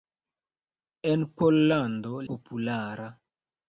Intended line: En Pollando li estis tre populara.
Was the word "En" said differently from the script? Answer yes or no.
no